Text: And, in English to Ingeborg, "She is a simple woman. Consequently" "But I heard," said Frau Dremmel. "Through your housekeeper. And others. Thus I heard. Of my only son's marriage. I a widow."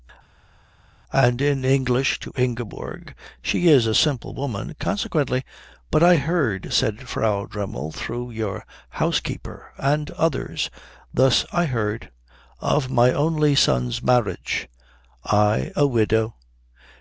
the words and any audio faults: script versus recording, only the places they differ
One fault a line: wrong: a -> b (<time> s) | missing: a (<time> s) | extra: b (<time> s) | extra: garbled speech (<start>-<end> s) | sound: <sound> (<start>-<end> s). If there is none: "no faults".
no faults